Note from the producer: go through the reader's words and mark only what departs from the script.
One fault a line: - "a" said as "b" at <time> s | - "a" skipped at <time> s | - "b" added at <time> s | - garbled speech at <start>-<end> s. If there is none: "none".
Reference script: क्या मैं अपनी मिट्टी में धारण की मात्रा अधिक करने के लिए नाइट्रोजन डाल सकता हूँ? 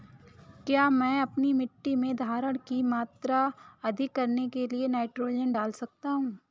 none